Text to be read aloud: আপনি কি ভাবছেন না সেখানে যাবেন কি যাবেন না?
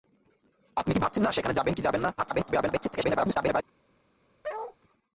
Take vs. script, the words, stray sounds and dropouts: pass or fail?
fail